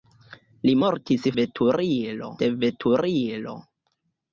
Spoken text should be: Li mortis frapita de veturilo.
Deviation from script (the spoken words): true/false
true